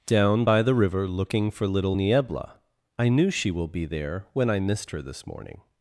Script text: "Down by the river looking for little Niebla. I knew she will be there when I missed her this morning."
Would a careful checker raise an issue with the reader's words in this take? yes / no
no